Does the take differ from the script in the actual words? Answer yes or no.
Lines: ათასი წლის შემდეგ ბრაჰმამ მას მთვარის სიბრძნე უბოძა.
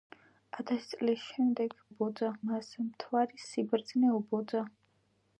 yes